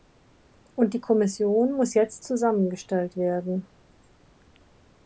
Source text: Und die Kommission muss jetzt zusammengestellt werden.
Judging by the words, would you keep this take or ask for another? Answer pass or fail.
pass